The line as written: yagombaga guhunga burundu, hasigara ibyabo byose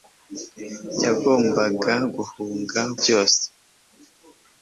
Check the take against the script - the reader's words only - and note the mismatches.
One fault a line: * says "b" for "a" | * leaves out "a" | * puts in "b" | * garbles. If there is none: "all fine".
* leaves out "burundu hasigara ibyabo"